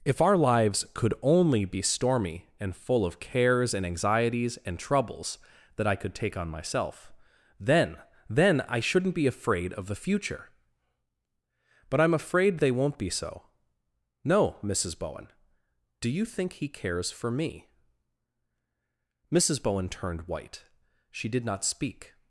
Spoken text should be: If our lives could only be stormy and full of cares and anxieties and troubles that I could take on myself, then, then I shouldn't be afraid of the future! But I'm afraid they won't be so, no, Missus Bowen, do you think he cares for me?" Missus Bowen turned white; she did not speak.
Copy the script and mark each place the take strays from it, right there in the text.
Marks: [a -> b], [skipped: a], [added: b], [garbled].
If our lives could only be stormy and full of cares and anxieties and troubles that I could take on myself, then, then I shouldn't be afraid of the future! But I'm afraid they won't be so, no, Missus Bowen, do you think he cares for me?" Missus Bowen turned white; she did not speak.